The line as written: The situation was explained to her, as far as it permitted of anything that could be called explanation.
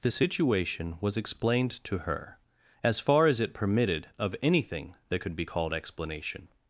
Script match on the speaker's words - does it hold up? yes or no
yes